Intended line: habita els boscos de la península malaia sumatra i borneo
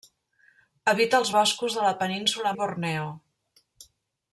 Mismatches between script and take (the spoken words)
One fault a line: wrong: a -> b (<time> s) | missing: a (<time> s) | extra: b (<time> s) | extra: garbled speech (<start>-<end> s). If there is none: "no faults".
missing: malaia sumatra (2.5 s)